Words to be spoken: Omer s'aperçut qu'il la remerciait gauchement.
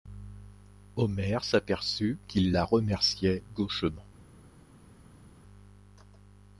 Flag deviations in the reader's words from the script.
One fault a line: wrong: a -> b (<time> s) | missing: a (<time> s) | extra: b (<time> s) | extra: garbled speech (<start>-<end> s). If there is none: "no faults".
no faults